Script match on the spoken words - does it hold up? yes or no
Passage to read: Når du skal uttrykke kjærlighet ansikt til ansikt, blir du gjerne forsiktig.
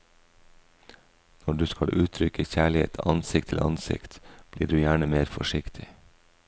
no